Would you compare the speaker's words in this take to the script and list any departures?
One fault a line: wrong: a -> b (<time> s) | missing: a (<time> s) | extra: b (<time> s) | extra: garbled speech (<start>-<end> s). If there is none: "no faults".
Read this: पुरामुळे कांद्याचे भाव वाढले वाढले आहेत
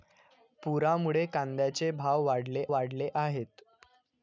no faults